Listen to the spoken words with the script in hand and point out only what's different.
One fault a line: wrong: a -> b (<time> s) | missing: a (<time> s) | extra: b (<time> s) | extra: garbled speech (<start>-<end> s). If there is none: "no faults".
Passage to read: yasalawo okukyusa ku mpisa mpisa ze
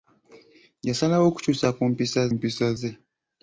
no faults